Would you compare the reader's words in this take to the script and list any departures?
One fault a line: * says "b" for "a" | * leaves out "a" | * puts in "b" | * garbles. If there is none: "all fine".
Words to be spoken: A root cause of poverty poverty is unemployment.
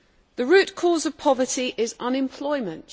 * says "The" for "A"
* leaves out "poverty"